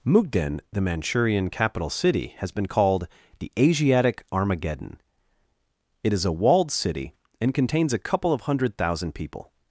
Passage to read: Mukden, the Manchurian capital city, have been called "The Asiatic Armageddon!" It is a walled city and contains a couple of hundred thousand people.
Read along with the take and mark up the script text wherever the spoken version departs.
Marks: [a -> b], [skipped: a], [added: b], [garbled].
Mukden, the Manchurian capital city, [have -> has] been called "The Asiatic Armageddon!" It is a walled city and contains a couple of hundred thousand people.